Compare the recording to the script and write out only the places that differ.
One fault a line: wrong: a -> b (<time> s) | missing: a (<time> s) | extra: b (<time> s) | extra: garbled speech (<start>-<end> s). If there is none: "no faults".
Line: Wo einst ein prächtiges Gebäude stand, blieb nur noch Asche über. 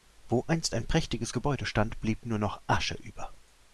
no faults